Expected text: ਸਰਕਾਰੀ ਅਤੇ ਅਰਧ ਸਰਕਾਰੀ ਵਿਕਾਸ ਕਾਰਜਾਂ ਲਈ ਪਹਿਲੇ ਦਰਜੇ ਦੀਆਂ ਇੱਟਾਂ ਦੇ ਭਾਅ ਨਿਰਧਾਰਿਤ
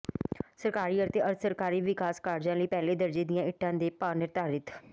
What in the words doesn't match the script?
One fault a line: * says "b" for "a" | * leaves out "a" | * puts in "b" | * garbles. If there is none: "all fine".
all fine